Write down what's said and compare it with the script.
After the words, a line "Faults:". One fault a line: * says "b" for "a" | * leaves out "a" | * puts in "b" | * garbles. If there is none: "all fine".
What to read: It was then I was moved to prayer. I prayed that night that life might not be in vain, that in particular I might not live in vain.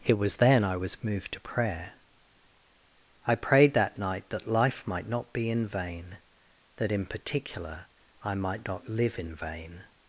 It was then I was moved to prayer. I prayed that night that life might not be in vain, that in particular I might not live in vain.
Faults:
all fine